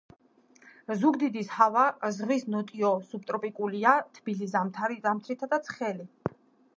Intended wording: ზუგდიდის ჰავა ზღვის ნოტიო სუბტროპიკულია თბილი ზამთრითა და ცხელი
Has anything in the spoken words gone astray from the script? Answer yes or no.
no